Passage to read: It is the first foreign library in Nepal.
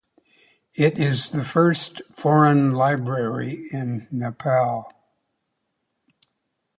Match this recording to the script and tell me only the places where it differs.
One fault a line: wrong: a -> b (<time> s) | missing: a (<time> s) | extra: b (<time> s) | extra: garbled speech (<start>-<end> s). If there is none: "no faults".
no faults